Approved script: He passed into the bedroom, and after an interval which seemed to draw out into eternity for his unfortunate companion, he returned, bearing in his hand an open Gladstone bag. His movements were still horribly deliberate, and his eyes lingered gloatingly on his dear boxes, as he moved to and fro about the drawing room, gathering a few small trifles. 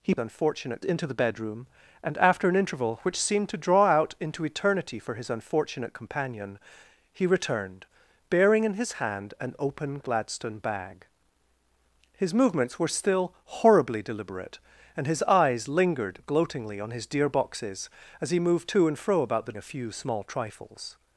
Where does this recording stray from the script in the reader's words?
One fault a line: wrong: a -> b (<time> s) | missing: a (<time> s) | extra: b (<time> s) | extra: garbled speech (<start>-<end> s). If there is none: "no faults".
wrong: passed -> unfortunate (0.2 s)
missing: drawing room gathering (19.5 s)